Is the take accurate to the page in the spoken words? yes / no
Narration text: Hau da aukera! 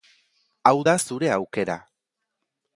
no